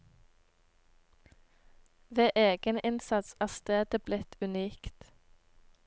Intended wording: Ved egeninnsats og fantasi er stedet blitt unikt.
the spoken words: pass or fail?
fail